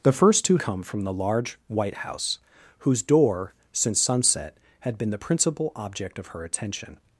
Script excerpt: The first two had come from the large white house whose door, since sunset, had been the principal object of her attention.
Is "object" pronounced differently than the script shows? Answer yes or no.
no